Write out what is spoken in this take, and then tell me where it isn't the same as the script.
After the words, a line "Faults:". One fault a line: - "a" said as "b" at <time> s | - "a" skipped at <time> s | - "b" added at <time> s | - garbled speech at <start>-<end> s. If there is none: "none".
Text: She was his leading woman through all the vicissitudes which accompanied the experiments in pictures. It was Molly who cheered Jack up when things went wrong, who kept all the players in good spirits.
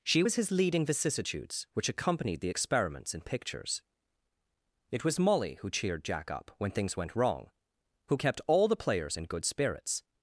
She was his leading vicissitudes which accompanied the experiments in pictures. It was Molly who cheered Jack up when things went wrong, who kept all the players in good spirits.
Faults:
- "woman through all the" skipped at 0.9 s